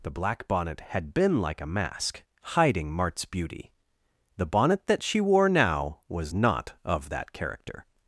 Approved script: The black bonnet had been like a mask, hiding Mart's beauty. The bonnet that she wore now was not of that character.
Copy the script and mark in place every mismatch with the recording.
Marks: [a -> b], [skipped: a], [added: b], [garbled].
The black bonnet had been like a mask, hiding Mart's beauty. The bonnet that she wore now was not of that character.